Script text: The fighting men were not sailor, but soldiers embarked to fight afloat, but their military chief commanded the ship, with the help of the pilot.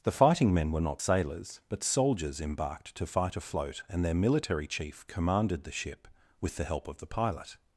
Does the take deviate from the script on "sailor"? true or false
true